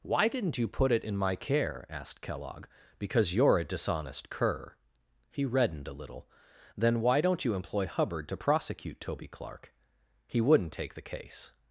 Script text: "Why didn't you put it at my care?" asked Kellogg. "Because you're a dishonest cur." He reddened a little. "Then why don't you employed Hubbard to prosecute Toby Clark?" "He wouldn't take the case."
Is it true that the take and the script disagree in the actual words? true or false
true